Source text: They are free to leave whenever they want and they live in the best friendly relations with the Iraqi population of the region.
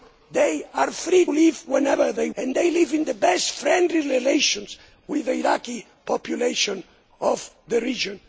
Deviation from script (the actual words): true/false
true